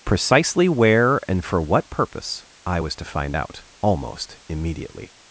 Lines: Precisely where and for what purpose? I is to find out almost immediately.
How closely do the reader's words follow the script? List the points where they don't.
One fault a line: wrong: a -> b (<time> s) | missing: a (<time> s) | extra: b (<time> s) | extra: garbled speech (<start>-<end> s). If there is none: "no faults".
wrong: is -> was (2.8 s)